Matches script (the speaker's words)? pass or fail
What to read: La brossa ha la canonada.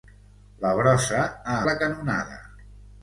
pass